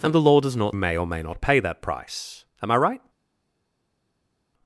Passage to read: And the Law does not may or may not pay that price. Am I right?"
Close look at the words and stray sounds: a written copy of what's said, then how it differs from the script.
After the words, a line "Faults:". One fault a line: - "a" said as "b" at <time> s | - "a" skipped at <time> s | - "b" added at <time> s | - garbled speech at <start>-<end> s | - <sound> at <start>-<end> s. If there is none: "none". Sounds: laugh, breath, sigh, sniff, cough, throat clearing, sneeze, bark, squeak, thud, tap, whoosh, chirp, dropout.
And the Law does not may or may not pay that price. Am I right?"
Faults:
none